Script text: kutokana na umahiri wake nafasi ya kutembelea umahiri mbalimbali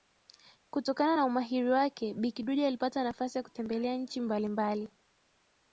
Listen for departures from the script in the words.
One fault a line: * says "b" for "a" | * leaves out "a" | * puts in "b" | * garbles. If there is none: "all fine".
* puts in "bi kidude alipata"
* says "nchi" for "umahiri"